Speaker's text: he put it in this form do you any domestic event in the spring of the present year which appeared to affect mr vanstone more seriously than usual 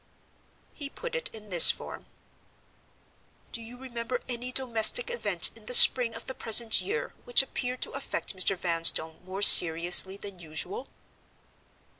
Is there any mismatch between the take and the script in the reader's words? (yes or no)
yes